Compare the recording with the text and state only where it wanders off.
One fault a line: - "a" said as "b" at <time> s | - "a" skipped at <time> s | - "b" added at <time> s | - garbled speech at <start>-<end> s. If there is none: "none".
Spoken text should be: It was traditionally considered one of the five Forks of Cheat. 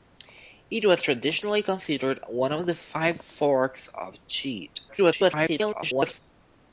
- garbled speech at 4.9-6.2 s